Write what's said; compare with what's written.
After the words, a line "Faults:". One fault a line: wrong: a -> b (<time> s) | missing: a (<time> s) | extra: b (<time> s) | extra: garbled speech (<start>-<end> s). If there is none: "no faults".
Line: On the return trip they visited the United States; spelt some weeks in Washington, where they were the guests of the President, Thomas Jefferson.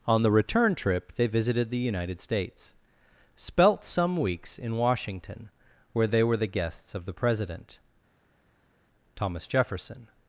On the return trip they visited the United States; spelt some weeks in Washington, where they were the guests of the President, Thomas Jefferson.
Faults:
no faults